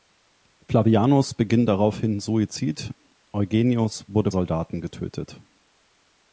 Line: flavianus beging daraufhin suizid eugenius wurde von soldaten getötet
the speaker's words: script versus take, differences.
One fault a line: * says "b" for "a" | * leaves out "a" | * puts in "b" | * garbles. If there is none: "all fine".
* leaves out "von"